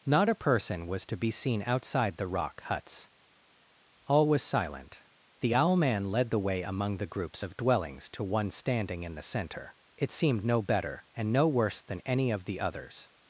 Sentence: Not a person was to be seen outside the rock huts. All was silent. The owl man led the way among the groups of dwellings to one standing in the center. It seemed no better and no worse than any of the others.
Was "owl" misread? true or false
false